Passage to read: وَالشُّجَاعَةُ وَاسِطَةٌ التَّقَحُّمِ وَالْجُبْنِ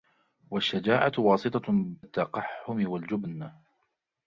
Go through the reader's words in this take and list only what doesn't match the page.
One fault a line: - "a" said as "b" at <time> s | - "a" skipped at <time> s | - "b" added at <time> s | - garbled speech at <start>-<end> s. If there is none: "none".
none